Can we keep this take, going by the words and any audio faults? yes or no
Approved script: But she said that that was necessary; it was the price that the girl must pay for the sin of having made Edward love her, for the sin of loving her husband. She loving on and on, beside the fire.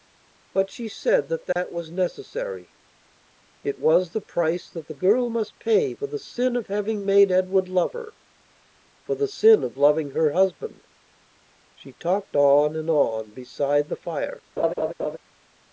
no